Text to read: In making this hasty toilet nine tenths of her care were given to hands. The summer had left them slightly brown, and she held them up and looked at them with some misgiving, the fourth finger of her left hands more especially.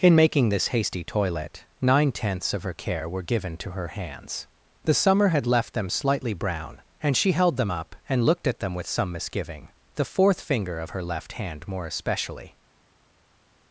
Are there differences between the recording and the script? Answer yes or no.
yes